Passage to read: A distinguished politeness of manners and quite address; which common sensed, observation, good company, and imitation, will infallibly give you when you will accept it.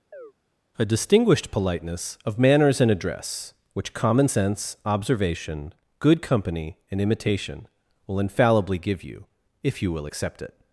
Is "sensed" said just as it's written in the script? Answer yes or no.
no